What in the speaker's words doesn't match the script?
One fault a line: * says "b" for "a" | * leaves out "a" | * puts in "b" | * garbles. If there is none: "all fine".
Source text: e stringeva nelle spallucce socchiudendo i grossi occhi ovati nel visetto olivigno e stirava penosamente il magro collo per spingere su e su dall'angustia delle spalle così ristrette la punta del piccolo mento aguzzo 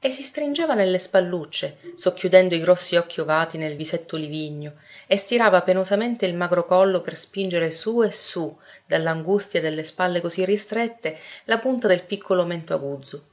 * puts in "si"